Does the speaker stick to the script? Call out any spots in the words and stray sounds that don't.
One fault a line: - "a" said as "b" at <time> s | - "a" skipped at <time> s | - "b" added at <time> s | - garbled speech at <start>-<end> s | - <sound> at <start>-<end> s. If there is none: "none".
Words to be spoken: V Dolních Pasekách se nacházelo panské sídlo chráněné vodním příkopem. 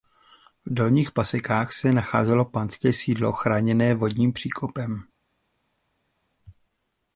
none